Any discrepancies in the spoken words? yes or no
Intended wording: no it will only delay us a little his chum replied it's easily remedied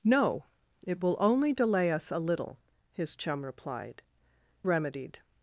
yes